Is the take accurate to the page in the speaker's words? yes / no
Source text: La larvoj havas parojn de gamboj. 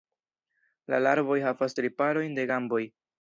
no